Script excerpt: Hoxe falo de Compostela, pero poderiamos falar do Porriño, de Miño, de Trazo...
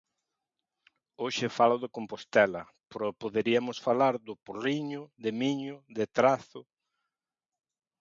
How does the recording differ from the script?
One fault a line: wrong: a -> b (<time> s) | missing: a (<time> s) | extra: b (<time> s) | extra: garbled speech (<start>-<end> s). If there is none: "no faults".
no faults